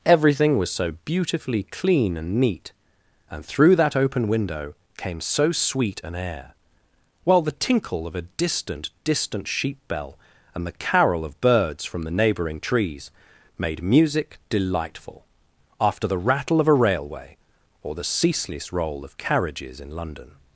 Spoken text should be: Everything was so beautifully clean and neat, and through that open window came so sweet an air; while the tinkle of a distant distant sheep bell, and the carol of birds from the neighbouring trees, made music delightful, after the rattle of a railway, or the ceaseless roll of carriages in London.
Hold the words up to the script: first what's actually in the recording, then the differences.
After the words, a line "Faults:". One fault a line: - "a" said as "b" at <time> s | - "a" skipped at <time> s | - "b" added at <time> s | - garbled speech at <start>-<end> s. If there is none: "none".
Everything was so beautifully clean and neat, and through that open window came so sweet an air; while the tinkle of a distant distant sheep bell, and the carol of birds from the neighbouring trees, made music delightful, after the rattle of a railway, or the ceaseless roll of carriages in London.
Faults:
none